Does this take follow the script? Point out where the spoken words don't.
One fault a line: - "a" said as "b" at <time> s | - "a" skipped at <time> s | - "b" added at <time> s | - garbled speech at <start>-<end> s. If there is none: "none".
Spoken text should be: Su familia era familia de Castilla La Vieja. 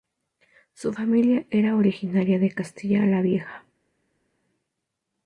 - "familia" said as "originaria" at 1.7 s